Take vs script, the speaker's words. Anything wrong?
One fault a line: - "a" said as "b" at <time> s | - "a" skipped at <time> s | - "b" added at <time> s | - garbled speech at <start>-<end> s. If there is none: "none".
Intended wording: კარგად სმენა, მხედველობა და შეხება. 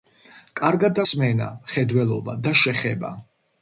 none